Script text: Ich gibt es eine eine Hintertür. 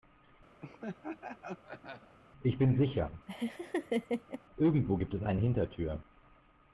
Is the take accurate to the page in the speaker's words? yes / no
no